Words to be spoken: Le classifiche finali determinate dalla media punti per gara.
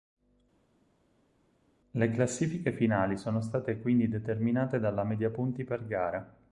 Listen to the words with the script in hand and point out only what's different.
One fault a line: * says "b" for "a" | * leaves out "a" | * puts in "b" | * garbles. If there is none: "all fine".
* puts in "sono state quindi"